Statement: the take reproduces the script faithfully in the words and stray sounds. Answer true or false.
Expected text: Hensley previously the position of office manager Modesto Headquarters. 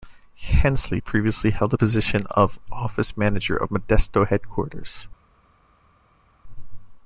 false